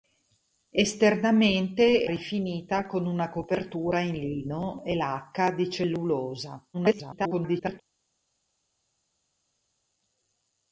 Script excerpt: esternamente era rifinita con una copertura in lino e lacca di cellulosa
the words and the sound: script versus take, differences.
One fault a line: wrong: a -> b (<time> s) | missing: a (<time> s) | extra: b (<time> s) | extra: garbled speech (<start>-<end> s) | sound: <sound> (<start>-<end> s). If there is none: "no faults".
missing: era (2.1 s)
extra: garbled speech (6.7-7.8 s)